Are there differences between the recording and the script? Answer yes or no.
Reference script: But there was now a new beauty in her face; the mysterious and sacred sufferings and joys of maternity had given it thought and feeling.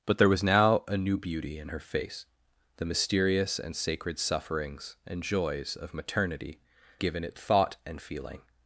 yes